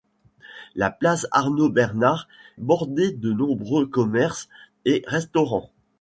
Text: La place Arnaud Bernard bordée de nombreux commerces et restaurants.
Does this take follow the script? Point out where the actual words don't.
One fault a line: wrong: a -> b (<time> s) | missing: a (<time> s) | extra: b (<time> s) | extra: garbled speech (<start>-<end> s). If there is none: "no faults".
no faults